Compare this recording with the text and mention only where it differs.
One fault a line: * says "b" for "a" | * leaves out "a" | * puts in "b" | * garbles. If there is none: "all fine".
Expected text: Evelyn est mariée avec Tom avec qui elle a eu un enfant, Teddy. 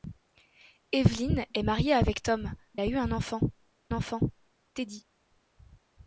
* leaves out "avec qui elle"
* puts in "enfant"